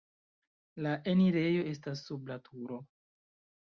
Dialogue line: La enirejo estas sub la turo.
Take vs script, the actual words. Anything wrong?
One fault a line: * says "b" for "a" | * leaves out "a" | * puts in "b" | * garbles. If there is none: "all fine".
all fine